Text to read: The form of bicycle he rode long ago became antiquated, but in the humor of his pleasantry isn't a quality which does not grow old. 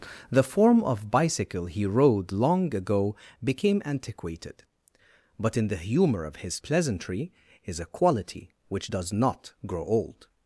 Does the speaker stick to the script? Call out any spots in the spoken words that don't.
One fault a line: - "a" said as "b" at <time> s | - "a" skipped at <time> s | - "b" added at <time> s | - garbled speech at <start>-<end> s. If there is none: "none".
- "isn't" said as "is" at 7.6 s